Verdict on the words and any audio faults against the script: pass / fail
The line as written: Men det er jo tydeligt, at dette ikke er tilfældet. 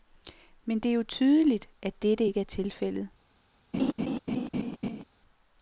fail